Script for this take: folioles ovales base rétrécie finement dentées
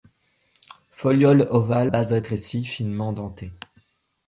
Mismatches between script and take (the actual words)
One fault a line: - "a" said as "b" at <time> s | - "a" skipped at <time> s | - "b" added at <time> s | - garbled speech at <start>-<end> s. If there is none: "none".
none